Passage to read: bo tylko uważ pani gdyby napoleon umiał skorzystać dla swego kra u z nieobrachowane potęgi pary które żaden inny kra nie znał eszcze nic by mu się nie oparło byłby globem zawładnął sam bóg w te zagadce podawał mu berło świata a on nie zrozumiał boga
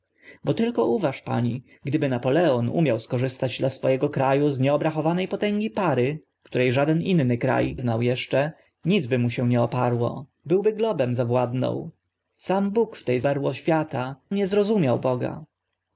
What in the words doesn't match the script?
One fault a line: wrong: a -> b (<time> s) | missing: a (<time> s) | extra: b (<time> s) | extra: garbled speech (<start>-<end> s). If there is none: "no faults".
missing: nie (7.6 s)
missing: zagadce podawał mu (13.2 s)
missing: a on (14.1 s)